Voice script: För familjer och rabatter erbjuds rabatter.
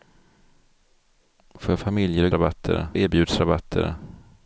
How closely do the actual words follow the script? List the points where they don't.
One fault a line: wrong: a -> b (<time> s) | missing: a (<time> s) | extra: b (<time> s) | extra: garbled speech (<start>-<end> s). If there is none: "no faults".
no faults